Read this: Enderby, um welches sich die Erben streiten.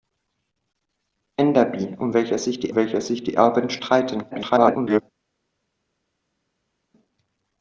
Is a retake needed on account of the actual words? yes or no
yes